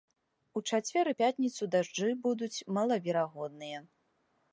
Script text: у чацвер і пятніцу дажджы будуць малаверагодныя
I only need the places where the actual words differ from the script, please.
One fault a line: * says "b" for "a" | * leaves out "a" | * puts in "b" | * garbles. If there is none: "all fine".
all fine